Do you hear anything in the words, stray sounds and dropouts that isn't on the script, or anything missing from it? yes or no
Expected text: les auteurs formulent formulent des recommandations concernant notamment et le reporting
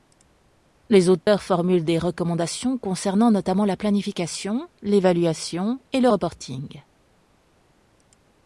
yes